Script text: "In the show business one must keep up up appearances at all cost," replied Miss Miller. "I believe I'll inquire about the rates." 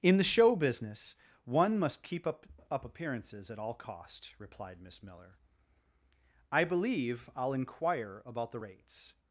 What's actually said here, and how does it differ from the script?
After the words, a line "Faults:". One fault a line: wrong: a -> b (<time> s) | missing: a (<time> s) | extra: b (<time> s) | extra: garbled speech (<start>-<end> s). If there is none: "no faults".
"In the show business one must keep up up appearances at all cost," replied Miss Miller. "I believe I'll inquire about the rates."
Faults:
no faults